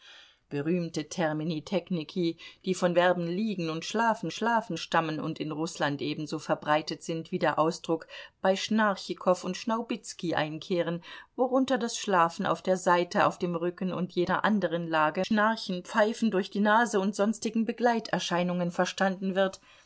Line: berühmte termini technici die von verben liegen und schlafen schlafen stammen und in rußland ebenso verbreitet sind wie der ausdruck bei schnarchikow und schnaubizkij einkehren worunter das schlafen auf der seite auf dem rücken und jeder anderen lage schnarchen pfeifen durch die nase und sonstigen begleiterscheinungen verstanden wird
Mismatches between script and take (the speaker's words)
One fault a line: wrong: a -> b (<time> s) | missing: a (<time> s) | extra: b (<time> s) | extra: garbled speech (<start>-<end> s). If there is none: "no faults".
no faults